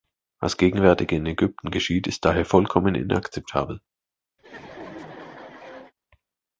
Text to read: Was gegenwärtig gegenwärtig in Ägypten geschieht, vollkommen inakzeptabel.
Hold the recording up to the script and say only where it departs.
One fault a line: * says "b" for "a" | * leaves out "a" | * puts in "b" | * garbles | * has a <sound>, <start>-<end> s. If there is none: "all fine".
* leaves out "gegenwärtig"
* puts in "ist daher"
* has a laugh, 4.4-5.9 s